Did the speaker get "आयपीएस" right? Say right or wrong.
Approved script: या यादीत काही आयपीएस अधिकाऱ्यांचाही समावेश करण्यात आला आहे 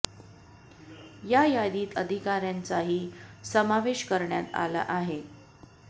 wrong